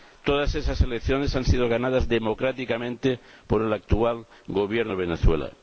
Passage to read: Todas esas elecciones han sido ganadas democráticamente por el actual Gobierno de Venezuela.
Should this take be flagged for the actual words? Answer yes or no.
no